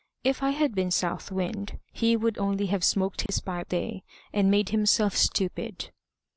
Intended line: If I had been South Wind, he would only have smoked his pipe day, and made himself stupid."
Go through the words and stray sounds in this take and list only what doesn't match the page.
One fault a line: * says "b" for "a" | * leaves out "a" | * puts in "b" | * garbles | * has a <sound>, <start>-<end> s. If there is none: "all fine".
* has a dropout, 3.3-3.3 s